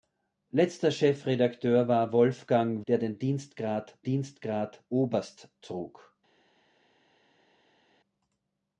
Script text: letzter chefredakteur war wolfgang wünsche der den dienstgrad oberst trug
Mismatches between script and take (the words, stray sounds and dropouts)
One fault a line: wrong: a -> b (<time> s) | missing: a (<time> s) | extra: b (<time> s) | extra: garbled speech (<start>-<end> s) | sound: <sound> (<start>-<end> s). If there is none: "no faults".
missing: wünsche (2.8 s)
extra: dienstgrad (4.0 s)